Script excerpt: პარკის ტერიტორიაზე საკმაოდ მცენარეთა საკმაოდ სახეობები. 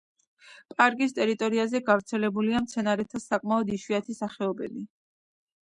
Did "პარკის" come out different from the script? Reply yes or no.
no